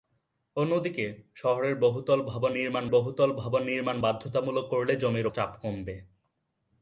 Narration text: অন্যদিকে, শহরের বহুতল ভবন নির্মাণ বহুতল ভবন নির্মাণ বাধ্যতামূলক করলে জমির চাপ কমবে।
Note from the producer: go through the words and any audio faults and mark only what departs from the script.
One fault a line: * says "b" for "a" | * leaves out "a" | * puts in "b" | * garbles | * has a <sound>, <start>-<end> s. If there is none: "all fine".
all fine